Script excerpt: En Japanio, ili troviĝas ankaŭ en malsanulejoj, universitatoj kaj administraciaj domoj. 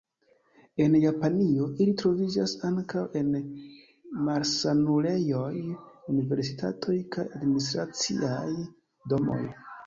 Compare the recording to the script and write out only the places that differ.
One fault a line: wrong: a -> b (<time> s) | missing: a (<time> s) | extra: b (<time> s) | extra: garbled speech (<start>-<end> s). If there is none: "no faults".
no faults